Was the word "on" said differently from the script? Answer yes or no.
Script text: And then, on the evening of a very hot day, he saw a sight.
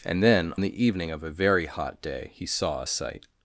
yes